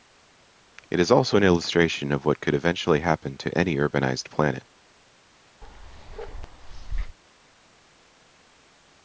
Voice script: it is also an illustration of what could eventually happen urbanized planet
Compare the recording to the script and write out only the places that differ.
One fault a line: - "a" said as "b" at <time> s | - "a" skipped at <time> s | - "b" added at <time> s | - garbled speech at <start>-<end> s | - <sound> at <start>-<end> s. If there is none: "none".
- "to any" added at 3.4 s
- bark at 5.6-7.2 s